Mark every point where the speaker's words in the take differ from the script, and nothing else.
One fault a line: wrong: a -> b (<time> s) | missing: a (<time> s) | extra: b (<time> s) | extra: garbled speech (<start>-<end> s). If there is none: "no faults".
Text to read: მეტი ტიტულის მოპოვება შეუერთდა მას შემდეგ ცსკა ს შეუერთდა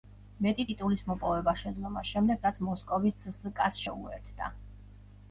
wrong: შეუერთდა -> შეძლო (1.6 s)
extra: რაც მოსკოვის (2.5 s)